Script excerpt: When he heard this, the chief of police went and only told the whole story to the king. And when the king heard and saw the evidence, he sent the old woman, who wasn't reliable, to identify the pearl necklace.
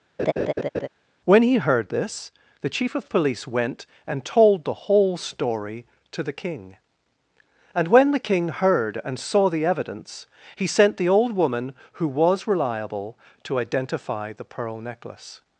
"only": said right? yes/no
no